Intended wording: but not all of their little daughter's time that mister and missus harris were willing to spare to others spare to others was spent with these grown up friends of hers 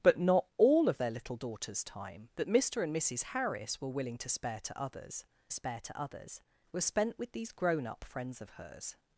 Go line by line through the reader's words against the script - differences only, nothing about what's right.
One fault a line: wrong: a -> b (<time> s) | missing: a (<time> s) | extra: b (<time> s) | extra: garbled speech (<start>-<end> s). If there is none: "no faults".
no faults